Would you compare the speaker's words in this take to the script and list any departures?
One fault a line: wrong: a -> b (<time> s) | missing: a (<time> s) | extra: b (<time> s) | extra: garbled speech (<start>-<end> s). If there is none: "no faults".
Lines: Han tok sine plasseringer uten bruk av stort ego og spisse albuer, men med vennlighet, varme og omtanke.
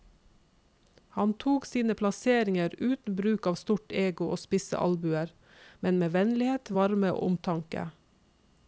no faults